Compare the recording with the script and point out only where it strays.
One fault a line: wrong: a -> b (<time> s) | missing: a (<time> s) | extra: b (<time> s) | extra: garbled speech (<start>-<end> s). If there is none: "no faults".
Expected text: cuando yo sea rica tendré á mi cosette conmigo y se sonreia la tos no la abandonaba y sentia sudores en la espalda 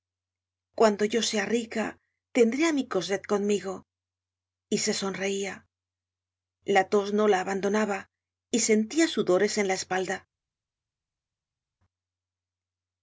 no faults